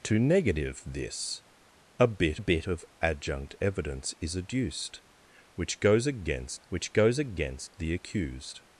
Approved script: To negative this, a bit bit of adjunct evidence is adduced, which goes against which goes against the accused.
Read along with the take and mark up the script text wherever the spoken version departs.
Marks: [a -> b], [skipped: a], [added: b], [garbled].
To negative this, a bit bit of adjunct evidence is adduced, which goes against which goes against the accused.